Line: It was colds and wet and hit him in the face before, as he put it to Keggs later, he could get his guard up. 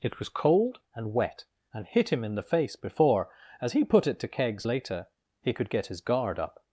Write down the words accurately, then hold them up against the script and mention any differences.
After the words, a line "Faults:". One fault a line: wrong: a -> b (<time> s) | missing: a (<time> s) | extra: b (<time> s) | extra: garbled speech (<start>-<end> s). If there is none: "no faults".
It was cold and wet and hit him in the face before, as he put it to Keggs later, he could get his guard up.
Faults:
wrong: colds -> cold (0.3 s)